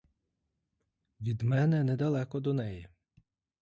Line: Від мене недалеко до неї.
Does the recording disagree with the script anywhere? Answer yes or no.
no